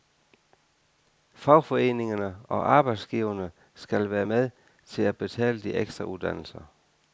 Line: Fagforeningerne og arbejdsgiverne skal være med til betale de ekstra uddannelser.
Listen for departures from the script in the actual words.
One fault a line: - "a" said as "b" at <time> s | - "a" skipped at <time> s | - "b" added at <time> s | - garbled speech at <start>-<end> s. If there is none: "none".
- "at" added at 5.0 s